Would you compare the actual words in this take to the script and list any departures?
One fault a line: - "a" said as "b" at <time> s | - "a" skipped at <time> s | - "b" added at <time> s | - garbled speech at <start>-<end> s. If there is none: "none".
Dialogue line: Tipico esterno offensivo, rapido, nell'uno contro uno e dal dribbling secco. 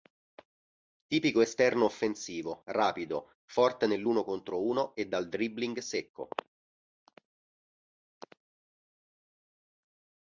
- "forte" added at 3.4 s